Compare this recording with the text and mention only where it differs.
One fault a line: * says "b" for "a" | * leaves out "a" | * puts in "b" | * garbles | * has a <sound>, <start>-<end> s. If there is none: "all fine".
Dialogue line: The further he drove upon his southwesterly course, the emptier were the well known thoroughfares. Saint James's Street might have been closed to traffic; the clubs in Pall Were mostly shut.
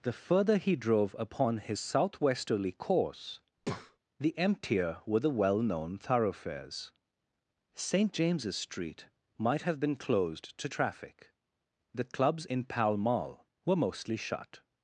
* has a breath, 3.6-4.0 s
* puts in "Mall"